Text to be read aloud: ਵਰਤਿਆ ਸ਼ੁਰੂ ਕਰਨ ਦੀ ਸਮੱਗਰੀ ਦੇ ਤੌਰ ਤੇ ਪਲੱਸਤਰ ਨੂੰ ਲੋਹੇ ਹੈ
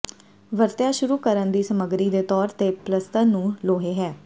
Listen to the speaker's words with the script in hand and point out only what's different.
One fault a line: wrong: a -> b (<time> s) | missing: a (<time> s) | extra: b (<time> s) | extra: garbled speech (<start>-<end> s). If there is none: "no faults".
no faults